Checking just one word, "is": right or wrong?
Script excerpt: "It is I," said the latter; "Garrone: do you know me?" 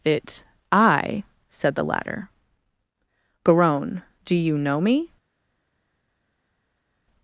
wrong